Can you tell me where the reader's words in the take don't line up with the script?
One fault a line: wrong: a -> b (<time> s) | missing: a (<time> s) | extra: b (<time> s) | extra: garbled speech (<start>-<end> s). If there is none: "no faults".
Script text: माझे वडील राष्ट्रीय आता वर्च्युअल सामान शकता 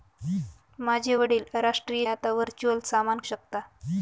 no faults